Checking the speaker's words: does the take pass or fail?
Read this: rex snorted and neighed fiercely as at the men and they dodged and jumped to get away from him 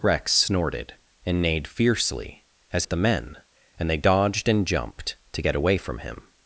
pass